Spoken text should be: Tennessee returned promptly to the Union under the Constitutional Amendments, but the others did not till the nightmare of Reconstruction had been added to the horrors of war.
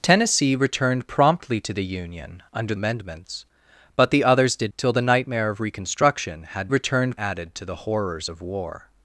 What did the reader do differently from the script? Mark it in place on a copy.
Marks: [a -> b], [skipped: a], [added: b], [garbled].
Tennessee returned promptly to the Union under [skipped: the Constitutional] Amendments, but the others did [skipped: not] till the nightmare of Reconstruction had [been -> returned] added to the horrors of war.